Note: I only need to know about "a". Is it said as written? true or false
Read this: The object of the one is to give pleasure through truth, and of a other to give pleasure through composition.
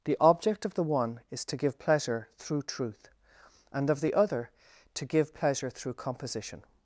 false